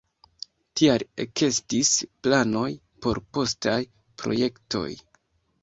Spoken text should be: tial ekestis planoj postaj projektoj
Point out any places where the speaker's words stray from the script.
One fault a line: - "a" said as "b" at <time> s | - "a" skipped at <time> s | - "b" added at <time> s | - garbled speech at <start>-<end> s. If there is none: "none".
- "por" added at 3.1 s